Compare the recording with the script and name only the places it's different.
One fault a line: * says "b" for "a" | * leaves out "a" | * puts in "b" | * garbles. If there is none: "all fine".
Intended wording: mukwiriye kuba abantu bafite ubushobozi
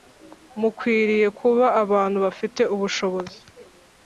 all fine